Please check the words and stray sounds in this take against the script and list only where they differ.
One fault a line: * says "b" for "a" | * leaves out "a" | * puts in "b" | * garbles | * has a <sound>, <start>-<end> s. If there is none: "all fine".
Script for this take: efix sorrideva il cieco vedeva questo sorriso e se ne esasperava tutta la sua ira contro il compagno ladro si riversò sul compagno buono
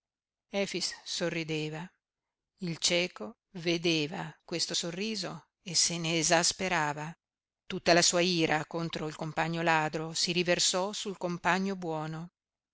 all fine